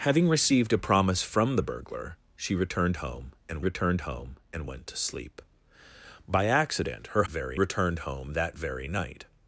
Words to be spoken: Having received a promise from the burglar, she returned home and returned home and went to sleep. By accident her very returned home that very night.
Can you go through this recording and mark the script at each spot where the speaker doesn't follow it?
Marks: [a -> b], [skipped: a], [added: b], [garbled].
Having received a promise from the burglar, she returned home and returned home and went to sleep. By accident her very returned home that very night.